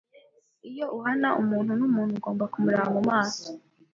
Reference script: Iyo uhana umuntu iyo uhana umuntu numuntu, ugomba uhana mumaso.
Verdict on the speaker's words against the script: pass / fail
fail